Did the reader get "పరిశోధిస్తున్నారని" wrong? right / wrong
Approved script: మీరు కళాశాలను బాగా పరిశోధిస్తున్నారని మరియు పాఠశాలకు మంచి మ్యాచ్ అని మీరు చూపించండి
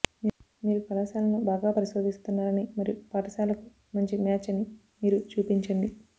right